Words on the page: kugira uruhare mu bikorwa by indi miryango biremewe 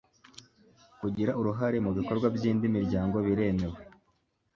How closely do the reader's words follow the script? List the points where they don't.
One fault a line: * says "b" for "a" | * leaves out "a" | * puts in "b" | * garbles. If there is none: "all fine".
all fine